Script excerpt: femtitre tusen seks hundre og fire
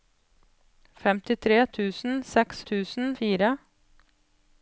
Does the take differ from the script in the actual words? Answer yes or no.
yes